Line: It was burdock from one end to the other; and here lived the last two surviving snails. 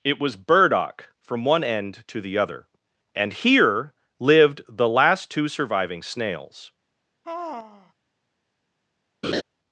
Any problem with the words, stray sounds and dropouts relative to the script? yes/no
yes